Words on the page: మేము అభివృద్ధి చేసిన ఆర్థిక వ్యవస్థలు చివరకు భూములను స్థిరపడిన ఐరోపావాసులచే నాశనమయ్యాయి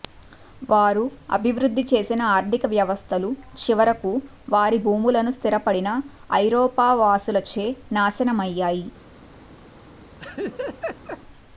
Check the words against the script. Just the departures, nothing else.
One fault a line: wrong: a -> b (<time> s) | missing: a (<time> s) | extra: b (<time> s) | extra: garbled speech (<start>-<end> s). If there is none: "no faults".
wrong: మేము -> వారు (0.7 s)
extra: వారి (4.5 s)